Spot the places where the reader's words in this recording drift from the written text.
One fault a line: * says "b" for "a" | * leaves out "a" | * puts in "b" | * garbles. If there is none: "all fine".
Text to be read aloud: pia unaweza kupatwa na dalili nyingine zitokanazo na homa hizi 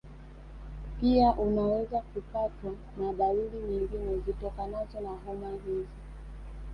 all fine